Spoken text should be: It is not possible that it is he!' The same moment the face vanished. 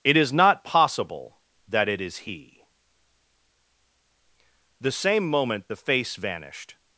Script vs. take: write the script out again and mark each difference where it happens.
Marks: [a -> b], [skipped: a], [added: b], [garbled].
It is not possible that it is he!' The same moment the face vanished.